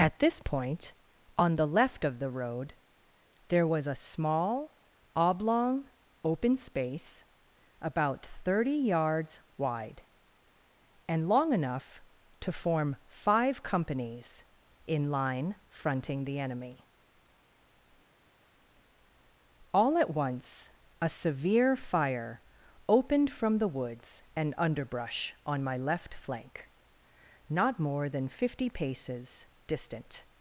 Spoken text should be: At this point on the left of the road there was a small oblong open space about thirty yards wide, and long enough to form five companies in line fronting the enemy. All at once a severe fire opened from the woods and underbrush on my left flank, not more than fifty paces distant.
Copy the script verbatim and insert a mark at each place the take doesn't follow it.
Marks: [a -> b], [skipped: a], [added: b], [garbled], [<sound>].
At this point on the left of the road there was a small oblong open space about thirty yards wide, and long enough to form five companies in line fronting the enemy. All at once a severe fire opened from the woods and underbrush on my left flank, not more than fifty paces distant.